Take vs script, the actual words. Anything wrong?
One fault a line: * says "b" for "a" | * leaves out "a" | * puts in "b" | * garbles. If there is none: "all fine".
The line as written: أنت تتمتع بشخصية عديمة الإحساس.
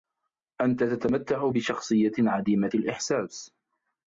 all fine